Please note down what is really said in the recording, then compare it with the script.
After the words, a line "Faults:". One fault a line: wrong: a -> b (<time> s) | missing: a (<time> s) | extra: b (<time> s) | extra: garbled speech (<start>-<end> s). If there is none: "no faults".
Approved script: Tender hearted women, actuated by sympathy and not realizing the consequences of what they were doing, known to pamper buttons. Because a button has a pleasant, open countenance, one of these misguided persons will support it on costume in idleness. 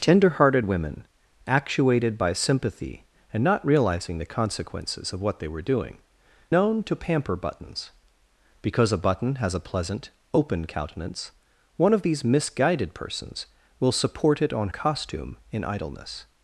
Tender hearted women, actuated by sympathy and not realizing the consequences of what they were doing, known to pamper buttons. Because a button has a pleasant, open countenance, one of these misguided persons will support it on costume in idleness.
Faults:
no faults